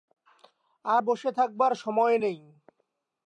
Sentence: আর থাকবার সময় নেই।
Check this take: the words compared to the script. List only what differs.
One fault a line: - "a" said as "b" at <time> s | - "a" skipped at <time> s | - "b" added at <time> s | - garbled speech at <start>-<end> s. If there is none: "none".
- "বসে" added at 1.0 s